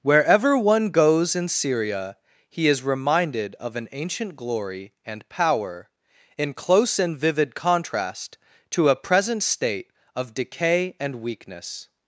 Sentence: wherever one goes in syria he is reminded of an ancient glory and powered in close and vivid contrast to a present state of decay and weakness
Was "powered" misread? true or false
true